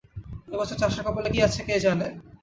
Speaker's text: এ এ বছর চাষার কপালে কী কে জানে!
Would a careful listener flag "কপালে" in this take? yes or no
no